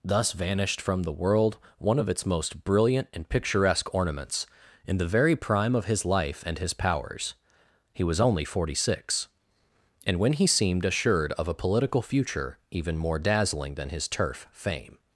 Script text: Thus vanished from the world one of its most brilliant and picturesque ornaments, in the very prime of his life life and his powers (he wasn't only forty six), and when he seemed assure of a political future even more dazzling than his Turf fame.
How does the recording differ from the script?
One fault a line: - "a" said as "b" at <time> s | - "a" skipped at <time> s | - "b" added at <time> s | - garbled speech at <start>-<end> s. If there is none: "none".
- "life" skipped at 6.4 s
- "wasn't" said as "was" at 8.0 s
- "assure" said as "assured" at 10.8 s